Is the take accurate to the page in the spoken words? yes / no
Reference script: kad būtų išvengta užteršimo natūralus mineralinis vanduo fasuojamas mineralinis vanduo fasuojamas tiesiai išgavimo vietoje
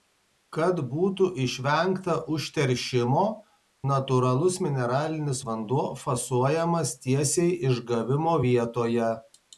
no